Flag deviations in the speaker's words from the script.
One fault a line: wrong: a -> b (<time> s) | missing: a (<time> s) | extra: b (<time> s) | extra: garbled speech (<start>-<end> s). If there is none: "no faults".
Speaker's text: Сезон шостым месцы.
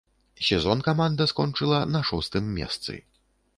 extra: каманда скончыла на (0.8 s)